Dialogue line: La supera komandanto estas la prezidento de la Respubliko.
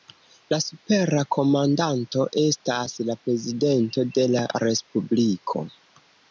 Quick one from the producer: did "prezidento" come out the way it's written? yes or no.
yes